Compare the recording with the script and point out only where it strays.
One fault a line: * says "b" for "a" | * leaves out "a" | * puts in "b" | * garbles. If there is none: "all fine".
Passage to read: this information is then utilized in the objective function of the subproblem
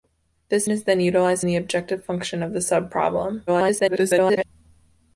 * leaves out "information"
* leaves out "in"
* garbles